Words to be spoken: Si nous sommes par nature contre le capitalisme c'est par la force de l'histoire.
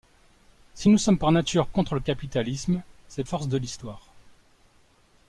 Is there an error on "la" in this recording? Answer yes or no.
yes